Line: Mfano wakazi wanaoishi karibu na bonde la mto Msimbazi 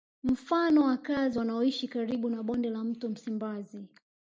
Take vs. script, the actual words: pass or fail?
pass